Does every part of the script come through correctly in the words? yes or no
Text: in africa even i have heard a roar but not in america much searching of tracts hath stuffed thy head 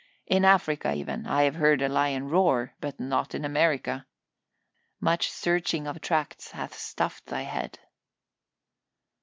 no